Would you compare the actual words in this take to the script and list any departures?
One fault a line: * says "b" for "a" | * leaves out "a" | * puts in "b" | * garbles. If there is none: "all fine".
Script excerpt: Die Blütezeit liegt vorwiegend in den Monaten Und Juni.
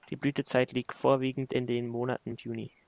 all fine